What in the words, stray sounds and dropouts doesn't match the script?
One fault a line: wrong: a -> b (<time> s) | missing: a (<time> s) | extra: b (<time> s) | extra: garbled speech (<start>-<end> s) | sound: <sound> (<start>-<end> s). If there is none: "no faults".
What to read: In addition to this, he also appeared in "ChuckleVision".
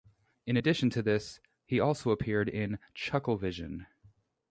no faults